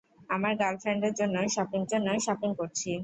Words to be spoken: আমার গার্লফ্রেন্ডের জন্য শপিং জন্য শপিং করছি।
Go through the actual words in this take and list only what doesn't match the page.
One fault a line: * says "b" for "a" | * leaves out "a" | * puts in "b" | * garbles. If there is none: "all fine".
all fine